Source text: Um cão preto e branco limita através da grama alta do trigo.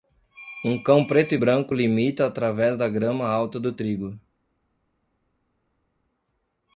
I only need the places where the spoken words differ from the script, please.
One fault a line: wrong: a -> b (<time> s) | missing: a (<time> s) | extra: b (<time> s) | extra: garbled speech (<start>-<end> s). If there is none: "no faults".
no faults